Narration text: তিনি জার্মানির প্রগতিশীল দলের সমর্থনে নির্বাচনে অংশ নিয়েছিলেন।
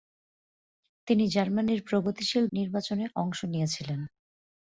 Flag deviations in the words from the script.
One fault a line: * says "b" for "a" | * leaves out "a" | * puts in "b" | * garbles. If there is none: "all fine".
* leaves out "দলের সমর্থনে"